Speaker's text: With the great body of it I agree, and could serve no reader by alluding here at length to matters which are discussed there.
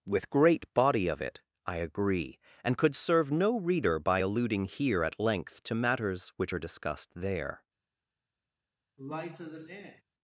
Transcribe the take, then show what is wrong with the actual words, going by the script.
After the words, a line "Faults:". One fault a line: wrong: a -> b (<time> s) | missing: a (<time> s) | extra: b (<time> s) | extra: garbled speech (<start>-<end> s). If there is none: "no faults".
With great body of it I agree, and could serve no reader by alluding here at length to matters which are discussed there.
Faults:
missing: the (0.3 s)